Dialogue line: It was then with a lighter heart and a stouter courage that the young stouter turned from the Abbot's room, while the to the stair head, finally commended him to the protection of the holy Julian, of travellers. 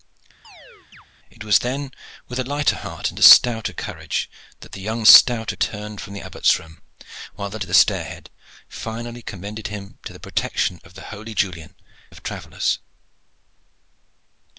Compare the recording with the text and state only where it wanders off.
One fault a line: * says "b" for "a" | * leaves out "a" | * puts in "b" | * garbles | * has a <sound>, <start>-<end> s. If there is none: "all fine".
* has a chirp, 0.4-1.1 s